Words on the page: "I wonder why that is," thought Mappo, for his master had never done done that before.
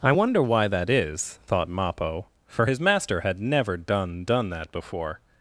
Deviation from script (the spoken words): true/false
false